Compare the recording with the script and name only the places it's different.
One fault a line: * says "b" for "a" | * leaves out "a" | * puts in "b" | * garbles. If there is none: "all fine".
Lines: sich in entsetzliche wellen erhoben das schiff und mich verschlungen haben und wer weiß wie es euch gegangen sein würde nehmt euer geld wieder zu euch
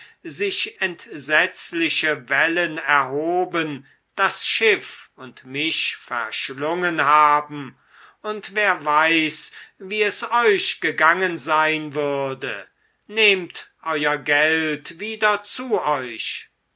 * leaves out "in"